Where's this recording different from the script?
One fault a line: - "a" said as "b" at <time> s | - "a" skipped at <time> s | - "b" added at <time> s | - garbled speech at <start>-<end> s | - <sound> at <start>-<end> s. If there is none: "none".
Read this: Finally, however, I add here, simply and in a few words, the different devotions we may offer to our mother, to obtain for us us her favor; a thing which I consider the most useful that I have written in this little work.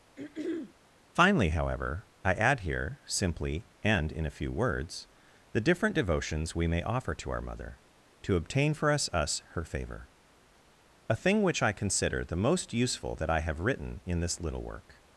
- throat clearing at 0.2-0.7 s